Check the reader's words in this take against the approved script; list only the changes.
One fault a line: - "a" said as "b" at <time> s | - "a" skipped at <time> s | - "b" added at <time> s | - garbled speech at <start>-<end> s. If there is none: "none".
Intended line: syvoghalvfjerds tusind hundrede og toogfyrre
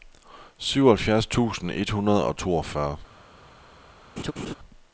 - "et" added at 1.7 s